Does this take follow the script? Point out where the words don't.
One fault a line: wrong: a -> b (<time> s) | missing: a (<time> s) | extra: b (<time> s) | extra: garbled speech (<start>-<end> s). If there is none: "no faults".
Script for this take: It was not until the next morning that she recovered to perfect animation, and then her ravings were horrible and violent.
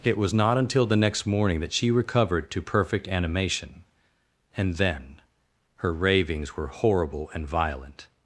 no faults